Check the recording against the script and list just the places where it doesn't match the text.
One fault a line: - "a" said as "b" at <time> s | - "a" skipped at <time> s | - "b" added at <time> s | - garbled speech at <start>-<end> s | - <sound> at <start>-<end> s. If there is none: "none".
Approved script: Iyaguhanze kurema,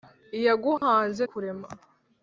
- dropout at 0.8-0.8 s